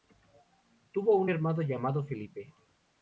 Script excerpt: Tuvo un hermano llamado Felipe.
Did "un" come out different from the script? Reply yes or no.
no